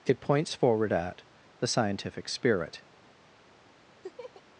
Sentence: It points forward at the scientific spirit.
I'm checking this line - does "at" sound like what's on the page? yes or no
yes